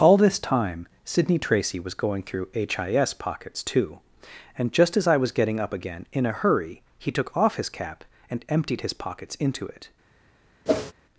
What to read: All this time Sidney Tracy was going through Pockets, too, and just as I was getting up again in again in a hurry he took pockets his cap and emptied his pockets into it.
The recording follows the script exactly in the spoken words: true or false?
false